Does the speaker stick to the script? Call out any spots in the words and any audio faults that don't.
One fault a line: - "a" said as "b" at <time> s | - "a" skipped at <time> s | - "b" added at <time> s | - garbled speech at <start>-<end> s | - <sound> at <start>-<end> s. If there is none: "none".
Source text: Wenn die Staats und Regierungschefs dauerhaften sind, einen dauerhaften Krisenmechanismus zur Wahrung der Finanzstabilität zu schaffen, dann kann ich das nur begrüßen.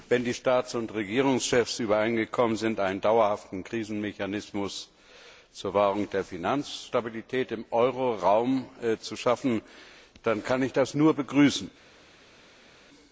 - "dauerhaften" said as "übereingekommen" at 1.8 s
- "im Euro Raum" added at 7.5 s